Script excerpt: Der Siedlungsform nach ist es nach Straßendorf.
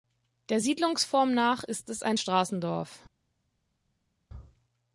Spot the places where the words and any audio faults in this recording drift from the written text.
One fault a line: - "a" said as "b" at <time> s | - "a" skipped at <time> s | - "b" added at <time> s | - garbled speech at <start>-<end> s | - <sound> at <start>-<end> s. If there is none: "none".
- "nach" said as "ein" at 2.0 s